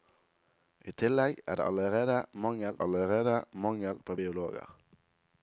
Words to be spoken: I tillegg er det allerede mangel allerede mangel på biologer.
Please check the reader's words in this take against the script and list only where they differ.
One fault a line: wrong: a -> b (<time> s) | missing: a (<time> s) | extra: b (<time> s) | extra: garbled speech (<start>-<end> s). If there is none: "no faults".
no faults